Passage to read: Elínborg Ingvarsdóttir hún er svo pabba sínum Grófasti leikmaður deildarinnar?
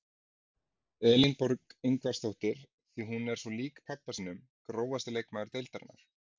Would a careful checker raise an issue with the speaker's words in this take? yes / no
yes